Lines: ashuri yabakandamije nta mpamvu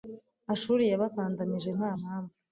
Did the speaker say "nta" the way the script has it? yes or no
yes